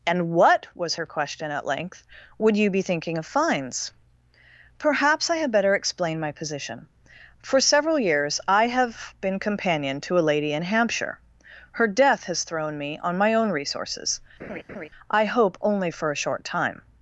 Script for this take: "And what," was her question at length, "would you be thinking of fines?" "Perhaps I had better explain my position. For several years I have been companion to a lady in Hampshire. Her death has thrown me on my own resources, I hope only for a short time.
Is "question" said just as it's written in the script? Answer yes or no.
yes